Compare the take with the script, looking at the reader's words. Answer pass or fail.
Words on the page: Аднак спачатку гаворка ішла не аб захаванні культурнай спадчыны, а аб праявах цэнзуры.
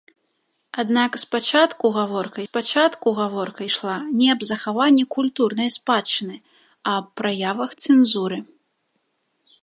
fail